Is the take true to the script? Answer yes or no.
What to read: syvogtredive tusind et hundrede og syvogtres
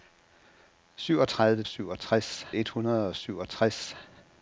no